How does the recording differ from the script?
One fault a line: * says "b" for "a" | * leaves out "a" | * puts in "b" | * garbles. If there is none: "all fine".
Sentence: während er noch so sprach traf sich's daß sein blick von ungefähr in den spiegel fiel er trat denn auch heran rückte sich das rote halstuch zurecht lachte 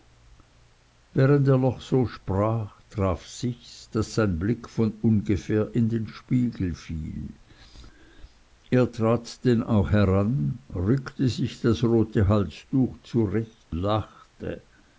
all fine